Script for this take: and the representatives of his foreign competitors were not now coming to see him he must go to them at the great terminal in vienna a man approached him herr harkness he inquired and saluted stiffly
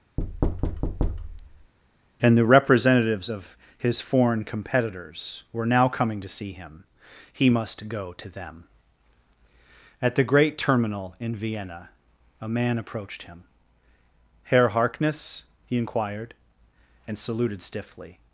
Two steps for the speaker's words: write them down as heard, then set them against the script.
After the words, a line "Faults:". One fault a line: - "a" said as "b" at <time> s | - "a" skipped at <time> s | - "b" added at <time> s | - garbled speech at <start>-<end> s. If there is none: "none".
and the representatives of his foreign competitors were now coming to see him he must go to them at the great terminal in vienna a man approached him herr harkness he inquired and saluted stiffly
Faults:
- "not" skipped at 5.6 s